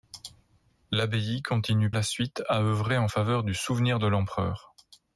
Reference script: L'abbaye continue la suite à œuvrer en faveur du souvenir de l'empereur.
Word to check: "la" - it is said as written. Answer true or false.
true